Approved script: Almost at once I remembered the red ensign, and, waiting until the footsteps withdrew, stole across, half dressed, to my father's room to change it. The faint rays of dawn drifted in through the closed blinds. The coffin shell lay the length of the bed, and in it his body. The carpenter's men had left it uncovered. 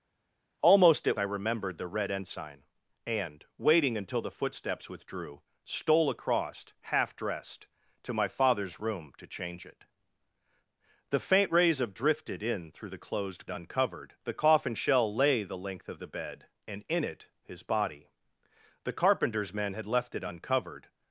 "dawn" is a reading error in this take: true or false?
true